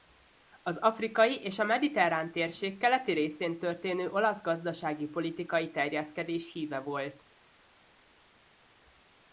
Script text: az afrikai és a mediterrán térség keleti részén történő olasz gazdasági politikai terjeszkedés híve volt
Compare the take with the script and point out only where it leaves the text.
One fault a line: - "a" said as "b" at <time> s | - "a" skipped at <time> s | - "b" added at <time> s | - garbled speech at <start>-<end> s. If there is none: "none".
none